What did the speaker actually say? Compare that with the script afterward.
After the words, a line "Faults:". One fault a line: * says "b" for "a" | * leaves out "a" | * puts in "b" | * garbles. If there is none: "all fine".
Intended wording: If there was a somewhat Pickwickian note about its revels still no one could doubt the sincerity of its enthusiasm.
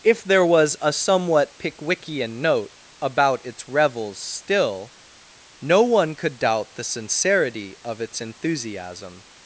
If there was a somewhat Pickwickian note about its revels still no one could doubt the sincerity of its enthusiasm.
Faults:
all fine